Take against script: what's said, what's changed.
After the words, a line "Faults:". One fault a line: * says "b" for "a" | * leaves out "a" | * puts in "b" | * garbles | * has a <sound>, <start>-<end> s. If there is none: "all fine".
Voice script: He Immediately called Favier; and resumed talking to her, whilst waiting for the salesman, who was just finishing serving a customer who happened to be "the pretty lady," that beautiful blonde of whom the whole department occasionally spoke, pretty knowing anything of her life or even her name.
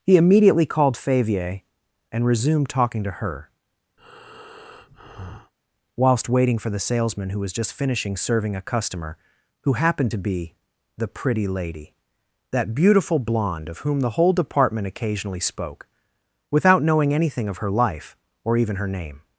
He Immediately called Favier; and resumed talking to her, whilst waiting for the salesman, who was just finishing serving a customer who happened to be "the pretty lady," that beautiful blonde of whom the whole department occasionally spoke, without knowing anything of her life or even her name.
Faults:
* has a breath, 4.0-5.5 s
* says "without" for "pretty"